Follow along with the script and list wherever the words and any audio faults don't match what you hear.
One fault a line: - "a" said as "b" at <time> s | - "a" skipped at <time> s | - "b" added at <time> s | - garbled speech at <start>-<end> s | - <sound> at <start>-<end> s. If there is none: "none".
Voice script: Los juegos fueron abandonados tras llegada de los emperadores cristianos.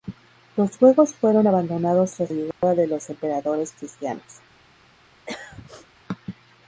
- dropout at 2.5-2.6 s
- throat clearing at 5.3-5.9 s